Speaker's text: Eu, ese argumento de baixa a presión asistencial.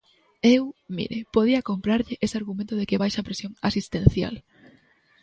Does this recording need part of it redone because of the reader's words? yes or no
yes